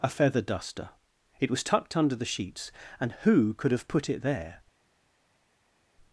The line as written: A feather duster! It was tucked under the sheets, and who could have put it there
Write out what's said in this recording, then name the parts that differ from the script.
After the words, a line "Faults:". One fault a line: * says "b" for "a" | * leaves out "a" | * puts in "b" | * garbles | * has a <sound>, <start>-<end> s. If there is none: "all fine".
A feather duster! It was tucked under the sheets, and who could have put it there
Faults:
all fine